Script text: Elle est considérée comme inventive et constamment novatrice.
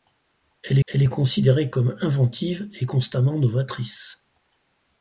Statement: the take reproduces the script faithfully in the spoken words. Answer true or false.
false